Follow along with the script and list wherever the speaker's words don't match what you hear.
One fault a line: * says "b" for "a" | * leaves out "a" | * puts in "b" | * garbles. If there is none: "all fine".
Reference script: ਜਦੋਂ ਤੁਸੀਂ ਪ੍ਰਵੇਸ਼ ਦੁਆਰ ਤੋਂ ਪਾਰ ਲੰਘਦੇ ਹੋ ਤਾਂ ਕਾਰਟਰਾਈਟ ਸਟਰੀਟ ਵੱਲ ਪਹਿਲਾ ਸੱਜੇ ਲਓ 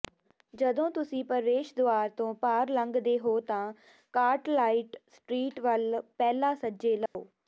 all fine